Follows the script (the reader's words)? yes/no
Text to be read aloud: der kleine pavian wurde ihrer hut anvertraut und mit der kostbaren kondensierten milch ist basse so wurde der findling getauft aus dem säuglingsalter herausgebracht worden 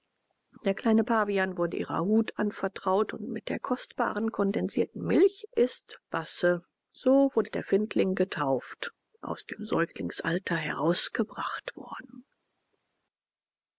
yes